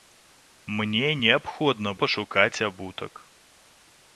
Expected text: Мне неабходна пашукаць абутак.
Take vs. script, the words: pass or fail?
pass